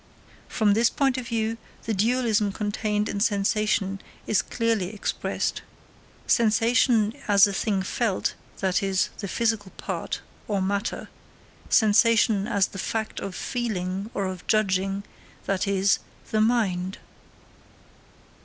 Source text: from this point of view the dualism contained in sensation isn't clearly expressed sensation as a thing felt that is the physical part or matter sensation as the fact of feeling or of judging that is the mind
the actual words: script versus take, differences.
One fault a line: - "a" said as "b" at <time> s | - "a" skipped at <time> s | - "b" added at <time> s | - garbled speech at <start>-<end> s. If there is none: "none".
- "isn't" said as "is" at 4.2 s